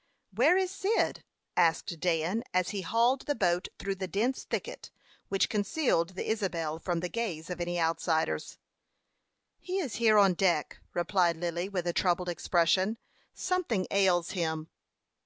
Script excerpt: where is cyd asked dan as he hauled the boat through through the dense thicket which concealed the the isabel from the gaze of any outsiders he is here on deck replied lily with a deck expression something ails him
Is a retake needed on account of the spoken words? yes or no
yes